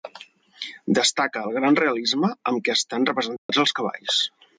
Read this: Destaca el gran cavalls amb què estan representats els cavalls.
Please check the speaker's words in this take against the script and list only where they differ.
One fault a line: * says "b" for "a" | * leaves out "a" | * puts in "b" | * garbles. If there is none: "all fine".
* says "realisme" for "cavalls"